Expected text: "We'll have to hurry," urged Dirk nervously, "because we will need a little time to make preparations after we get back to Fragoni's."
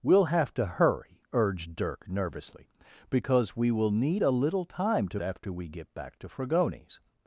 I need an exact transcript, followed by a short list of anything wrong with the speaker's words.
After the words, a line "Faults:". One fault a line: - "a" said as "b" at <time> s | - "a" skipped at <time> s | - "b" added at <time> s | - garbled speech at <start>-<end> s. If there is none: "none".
"We'll have to hurry," urged Dirk nervously, "because we will need a little time to after we get back to Fragoni's."
Faults:
- "make preparations" skipped at 5.2 s